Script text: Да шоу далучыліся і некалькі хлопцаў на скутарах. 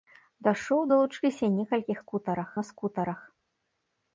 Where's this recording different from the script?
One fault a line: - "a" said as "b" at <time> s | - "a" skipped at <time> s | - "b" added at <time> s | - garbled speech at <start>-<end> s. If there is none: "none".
- "хлопцаў" said as "скутарах" at 2.0 s